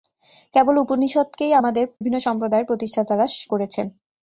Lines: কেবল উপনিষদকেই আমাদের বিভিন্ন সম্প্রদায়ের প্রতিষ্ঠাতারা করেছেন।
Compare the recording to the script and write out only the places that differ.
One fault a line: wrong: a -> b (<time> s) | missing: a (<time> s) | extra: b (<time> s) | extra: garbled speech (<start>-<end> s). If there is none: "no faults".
no faults